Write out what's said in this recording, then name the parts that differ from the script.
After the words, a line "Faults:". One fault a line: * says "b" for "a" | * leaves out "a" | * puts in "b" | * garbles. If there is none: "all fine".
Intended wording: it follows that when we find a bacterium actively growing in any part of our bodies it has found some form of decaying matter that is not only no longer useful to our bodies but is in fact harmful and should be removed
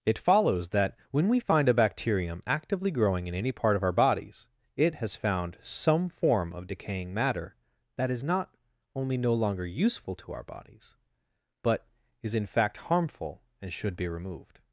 it follows that when we find a bacterium actively growing in any part of our bodies it has found some form of decaying matter that is not only no longer useful to our bodies but is in fact harmful and should be removed
Faults:
all fine